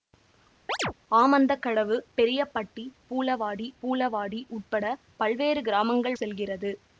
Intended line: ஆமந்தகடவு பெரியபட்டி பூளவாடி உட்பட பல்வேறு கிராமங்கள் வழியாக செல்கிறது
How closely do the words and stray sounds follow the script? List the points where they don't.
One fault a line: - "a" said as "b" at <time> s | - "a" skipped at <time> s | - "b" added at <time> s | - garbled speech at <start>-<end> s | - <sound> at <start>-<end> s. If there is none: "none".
- chirp at 0.7-0.9 s
- "பூளவாடி" added at 3.8 s
- "வழியாக" skipped at 6.2 s